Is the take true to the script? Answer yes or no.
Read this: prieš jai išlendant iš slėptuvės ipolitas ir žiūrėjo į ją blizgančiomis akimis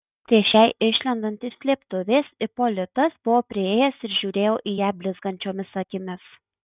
no